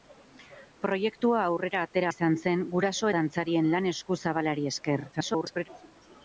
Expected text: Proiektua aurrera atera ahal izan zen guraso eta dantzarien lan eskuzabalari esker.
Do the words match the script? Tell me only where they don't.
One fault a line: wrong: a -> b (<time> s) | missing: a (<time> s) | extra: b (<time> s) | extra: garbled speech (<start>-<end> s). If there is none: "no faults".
missing: ahal (2.1 s)
missing: eta (3.1 s)
extra: garbled speech (5.1-5.7 s)